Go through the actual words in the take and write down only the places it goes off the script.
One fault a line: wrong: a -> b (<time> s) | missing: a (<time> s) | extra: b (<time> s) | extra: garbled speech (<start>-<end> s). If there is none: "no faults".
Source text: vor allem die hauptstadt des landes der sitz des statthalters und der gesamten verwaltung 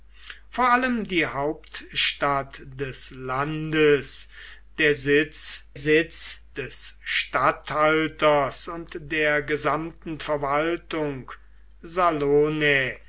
extra: sitz (5.8 s)